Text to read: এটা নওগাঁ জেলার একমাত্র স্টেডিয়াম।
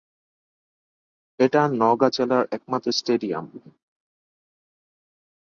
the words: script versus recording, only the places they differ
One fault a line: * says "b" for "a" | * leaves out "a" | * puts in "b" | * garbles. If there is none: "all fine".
all fine